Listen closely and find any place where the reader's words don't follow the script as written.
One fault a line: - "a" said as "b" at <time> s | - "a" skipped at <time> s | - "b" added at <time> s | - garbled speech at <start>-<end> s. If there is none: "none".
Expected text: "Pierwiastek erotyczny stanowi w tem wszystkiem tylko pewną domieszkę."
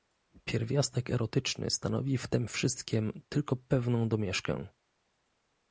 none